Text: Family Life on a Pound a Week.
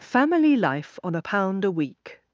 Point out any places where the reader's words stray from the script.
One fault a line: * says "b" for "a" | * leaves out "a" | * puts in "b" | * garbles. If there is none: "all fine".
all fine